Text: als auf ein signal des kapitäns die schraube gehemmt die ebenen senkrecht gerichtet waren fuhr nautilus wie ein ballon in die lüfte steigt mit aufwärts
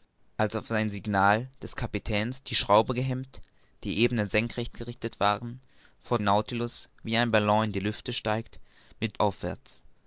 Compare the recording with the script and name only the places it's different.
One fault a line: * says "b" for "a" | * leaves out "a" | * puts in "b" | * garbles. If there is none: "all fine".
all fine